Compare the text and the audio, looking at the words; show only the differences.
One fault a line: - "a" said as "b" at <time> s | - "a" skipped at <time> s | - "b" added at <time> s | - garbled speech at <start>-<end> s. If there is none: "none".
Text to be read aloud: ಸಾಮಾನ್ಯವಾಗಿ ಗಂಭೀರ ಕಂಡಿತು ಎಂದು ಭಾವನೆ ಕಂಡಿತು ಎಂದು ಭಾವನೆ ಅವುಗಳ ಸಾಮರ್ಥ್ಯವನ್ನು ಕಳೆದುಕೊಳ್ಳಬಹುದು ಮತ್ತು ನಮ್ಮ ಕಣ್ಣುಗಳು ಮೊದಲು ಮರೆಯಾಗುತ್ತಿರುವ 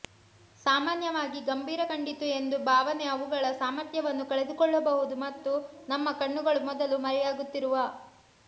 - "ಕಂಡಿತು ಎಂದು ಭಾವನೆ" skipped at 3.0 s